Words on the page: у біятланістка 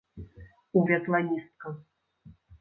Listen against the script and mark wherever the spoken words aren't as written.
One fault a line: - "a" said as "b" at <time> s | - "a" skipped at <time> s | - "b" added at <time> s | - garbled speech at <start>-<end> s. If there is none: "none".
none